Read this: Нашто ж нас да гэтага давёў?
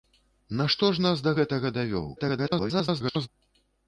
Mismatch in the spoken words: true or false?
true